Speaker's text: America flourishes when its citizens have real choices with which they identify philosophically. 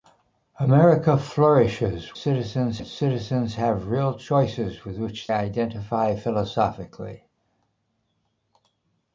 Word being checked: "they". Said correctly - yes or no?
no